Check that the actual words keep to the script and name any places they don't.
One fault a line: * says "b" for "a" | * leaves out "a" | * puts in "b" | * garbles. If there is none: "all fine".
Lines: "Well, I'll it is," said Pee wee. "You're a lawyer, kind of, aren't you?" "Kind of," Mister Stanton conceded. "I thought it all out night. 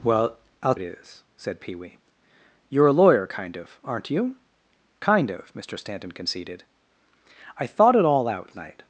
all fine